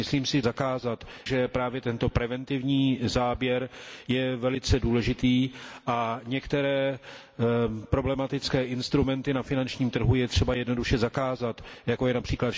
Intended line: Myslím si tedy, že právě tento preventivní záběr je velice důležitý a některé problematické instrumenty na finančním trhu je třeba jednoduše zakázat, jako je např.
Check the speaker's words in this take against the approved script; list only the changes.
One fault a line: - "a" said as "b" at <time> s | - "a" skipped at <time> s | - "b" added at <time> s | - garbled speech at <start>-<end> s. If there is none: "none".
- "tedy" said as "zakázat" at 0.4 s